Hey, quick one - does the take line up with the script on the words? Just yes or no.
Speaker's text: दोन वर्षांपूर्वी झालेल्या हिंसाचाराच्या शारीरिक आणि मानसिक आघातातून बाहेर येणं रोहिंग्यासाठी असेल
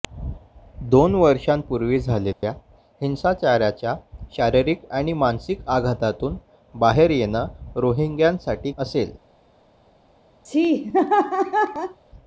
yes